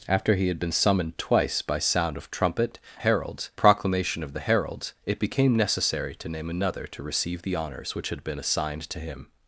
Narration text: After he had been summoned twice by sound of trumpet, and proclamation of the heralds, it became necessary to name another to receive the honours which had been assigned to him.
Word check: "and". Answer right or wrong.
wrong